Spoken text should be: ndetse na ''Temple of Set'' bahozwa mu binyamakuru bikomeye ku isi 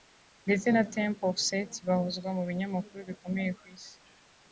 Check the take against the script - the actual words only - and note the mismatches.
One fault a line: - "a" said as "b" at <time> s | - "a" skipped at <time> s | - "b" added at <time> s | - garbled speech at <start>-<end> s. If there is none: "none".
none